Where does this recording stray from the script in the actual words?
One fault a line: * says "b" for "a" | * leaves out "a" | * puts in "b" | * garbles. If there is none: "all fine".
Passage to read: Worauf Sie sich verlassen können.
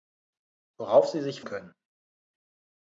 * leaves out "verlassen"